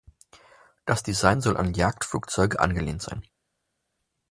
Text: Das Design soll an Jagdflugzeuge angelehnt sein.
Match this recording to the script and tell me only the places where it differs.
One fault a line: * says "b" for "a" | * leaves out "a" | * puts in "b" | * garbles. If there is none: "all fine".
all fine